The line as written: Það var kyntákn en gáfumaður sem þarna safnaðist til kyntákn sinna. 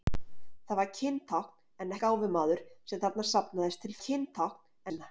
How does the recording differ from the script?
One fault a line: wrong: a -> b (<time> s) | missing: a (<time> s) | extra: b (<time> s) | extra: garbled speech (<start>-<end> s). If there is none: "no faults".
no faults